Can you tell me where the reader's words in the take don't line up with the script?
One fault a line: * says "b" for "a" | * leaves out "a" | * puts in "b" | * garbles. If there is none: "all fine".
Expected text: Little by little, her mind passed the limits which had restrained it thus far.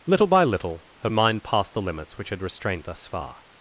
* leaves out "it"